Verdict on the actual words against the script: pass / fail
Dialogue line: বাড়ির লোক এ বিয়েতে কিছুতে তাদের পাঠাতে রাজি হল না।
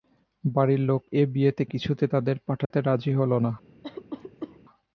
pass